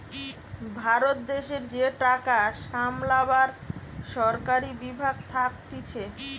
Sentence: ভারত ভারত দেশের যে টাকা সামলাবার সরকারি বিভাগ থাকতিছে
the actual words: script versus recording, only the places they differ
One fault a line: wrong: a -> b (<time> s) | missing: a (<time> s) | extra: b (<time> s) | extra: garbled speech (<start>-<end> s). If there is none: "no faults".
missing: ভারত (1.2 s)